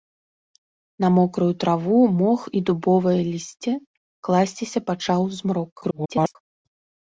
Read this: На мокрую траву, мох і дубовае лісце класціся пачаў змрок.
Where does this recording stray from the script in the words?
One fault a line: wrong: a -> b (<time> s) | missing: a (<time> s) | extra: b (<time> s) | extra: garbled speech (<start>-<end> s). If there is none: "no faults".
extra: garbled speech (5.8-6.4 s)